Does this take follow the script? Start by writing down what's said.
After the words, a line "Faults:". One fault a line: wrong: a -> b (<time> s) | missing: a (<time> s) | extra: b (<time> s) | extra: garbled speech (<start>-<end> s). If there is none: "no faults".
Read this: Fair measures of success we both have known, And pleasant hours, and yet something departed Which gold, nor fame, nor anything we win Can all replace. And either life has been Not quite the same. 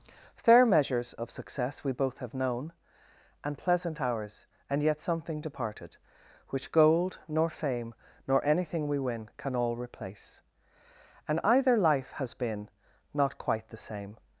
Fair measures of success we both have known, And pleasant hours, and yet something departed Which gold, nor fame, nor anything we win Can all replace. And either life has been Not quite the same.
Faults:
no faults